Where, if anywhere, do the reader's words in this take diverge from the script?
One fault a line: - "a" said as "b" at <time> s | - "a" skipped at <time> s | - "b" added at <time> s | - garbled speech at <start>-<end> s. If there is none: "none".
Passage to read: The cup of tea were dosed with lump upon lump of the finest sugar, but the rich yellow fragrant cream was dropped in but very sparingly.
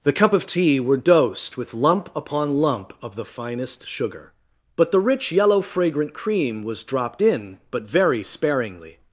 none